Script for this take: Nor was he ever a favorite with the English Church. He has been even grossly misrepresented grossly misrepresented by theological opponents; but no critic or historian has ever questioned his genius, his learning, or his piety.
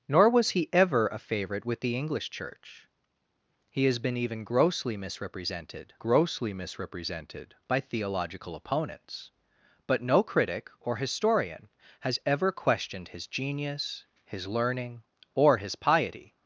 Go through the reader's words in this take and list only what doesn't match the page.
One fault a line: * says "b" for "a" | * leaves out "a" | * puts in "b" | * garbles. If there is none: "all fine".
all fine